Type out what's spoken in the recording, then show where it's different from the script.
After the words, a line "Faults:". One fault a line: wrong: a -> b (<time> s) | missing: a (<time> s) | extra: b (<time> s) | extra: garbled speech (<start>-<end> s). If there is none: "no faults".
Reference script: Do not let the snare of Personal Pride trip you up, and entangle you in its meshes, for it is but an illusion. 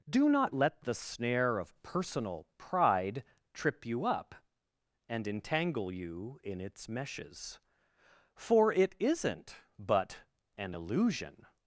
Do not let the snare of Personal Pride trip you up, and entangle you in its meshes, for it isn't but an illusion.
Faults:
wrong: is -> isn't (9.0 s)